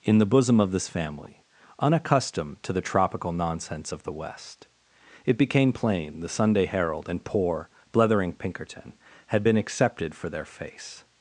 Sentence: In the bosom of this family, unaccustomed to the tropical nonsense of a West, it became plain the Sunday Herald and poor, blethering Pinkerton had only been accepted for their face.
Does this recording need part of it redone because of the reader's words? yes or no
yes